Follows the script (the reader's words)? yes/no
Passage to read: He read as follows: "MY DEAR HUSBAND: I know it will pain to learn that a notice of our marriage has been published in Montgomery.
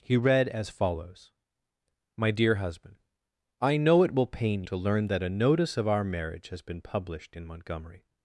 yes